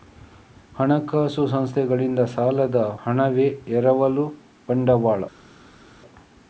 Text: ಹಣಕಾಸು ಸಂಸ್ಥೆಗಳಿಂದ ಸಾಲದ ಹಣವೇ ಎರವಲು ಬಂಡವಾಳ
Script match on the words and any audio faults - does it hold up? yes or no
yes